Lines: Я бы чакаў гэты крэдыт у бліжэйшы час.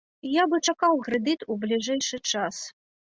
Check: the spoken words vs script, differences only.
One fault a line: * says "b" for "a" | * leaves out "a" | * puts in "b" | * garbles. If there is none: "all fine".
* leaves out "гэты"